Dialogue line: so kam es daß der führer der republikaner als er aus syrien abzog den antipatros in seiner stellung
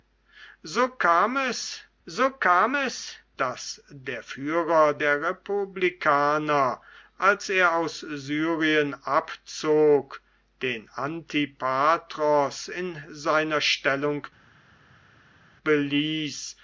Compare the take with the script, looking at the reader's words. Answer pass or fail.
fail